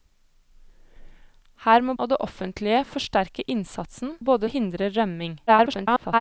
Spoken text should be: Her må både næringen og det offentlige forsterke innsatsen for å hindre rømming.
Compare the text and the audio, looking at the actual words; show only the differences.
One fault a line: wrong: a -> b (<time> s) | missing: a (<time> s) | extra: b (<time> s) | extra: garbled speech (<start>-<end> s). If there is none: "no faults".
missing: både næringen (1.9 s)
wrong: for -> både (4.2 s)
extra: garbled speech (5.5-6.2 s)